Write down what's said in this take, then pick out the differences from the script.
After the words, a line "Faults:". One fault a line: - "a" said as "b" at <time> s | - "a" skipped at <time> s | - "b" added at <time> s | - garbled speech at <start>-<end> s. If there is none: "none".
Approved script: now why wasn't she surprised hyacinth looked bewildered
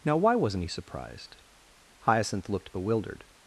now why wasn't he surprised hyacinth looked bewildered
Faults:
- "she" said as "he" at 0.6 s